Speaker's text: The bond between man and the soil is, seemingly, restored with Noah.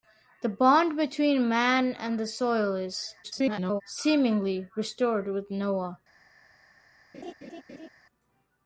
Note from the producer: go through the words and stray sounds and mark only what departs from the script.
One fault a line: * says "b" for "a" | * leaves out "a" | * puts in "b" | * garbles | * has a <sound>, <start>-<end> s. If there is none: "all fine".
* garbles
* has a laugh, 7.1-7.9 s